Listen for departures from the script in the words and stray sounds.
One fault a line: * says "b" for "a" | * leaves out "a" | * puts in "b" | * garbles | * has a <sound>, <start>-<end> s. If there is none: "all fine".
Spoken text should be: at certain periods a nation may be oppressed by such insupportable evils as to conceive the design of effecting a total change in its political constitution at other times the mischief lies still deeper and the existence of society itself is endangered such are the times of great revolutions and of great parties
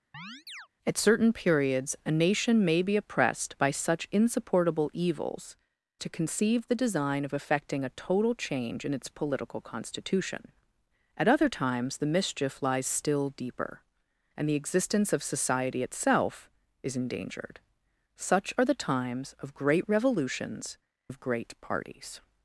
* has a chirp, 0.1-0.7 s
* leaves out "as"
* leaves out "and"